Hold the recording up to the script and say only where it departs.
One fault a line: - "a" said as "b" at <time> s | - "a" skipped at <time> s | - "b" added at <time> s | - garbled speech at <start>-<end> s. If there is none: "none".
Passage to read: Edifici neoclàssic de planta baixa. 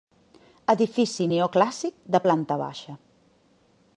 none